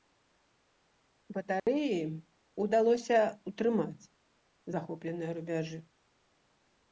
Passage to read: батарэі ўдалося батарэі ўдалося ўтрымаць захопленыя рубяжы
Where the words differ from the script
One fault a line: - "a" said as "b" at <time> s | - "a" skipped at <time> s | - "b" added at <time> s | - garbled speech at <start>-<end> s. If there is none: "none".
- "батарэі ўдалося" skipped at 3.2 s